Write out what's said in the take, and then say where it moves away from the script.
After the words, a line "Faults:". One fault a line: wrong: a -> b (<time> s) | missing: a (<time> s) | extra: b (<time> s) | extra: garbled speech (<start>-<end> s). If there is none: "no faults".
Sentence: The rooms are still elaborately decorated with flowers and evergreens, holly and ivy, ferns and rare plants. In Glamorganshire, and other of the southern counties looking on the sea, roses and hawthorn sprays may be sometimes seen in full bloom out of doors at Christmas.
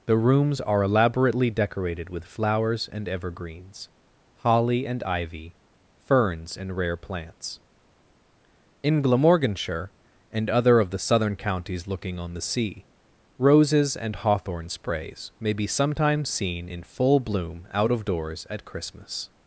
The rooms are elaborately decorated with flowers and evergreens, holly and ivy, ferns and rare plants. In Glamorganshire, and other of the southern counties looking on the sea, roses and hawthorn sprays may be sometimes seen in full bloom out of doors at Christmas.
Faults:
missing: still (0.8 s)